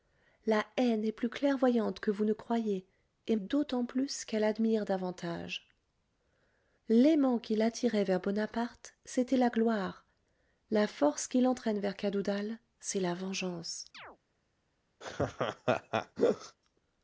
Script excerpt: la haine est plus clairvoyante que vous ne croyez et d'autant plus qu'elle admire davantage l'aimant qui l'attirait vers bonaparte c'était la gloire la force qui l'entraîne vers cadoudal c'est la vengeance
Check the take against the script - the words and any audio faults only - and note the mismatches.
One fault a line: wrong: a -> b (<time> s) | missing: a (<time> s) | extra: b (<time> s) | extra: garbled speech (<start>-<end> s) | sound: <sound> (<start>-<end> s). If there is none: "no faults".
sound: chirp (13.9-14.2 s)
sound: laugh (15.0-16.6 s)